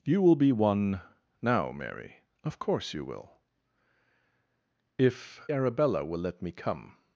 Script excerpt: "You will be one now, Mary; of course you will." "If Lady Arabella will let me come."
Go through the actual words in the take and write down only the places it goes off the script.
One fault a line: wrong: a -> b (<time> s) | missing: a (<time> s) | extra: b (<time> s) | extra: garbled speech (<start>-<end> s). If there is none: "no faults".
missing: Lady (5.4 s)